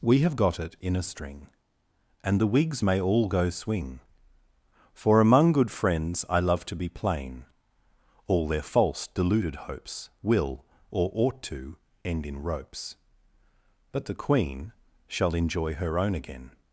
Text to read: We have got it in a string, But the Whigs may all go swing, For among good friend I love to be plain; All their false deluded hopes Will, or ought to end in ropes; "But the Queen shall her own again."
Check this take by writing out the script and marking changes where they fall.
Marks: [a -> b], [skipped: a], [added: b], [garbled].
We have got it in a string, [But -> And] the Whigs may all go swing, For among good [friend -> friends] I love to be plain; All their false deluded hopes Will, or ought to end in ropes; "But the Queen shall [added: enjoy] her own again."